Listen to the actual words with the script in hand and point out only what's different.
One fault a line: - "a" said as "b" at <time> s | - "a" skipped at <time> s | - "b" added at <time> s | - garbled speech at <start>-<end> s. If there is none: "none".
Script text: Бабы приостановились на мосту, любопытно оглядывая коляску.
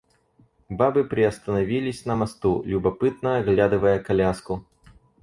none